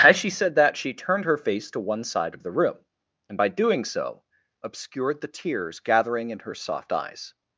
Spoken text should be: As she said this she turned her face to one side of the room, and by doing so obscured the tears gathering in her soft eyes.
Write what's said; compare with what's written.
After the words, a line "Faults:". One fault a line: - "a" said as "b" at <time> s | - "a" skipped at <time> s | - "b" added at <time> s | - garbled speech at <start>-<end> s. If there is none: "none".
As she said that she turned her face to one side of the room, and by doing so obscured the tears gathering in her soft eyes.
Faults:
- "this" said as "that" at 0.6 s